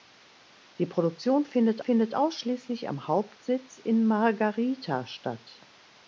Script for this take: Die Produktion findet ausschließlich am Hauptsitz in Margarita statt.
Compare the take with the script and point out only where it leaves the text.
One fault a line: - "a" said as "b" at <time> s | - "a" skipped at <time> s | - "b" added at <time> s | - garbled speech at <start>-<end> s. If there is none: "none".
- "findet" added at 1.8 s